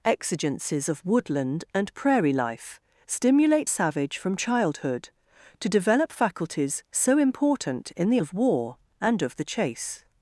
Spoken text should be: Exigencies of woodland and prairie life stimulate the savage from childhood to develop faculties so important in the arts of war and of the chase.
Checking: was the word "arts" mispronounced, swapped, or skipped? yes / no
yes